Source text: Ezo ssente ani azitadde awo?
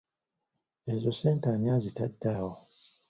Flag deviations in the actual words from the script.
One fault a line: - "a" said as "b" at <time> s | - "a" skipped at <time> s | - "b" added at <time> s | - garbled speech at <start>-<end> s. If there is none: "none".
none